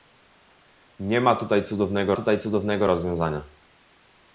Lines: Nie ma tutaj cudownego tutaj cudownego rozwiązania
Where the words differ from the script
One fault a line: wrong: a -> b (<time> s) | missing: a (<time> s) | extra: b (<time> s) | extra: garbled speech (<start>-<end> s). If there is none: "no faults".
no faults